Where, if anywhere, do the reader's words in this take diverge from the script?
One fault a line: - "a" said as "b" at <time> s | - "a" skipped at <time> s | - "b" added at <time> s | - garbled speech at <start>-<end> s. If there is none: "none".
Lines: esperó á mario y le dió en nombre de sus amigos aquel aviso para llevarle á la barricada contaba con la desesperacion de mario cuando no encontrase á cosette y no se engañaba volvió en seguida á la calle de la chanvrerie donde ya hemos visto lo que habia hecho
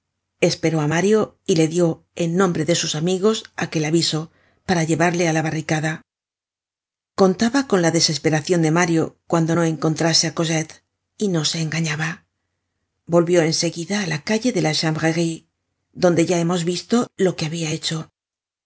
none